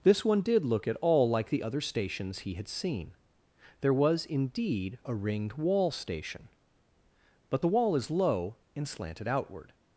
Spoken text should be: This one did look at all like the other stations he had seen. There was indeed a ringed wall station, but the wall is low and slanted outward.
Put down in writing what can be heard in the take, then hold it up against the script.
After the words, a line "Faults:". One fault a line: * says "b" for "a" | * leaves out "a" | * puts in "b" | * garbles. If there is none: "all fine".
This one did look at all like the other stations he had seen. There was indeed a ringed wall station, but the wall is low and slanted outward.
Faults:
all fine